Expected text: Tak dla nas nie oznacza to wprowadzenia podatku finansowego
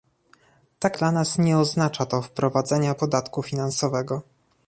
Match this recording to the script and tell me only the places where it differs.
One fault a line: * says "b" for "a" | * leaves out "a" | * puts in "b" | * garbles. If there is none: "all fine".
all fine